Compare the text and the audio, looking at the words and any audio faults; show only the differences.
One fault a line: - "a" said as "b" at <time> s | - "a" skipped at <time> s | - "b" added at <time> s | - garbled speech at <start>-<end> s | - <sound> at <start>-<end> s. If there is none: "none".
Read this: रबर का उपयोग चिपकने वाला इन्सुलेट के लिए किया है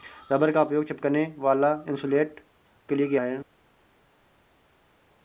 none